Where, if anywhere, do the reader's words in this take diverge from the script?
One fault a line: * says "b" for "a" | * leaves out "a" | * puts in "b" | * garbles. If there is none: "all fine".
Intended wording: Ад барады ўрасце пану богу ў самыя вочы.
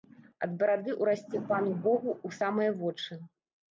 all fine